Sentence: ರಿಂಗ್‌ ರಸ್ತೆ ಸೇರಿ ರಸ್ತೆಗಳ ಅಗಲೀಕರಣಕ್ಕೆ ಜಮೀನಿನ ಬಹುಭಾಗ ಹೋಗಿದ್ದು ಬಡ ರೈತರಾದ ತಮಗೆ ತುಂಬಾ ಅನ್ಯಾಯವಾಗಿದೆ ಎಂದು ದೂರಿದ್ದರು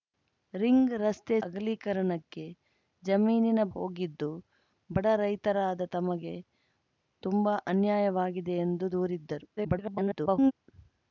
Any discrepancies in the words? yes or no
yes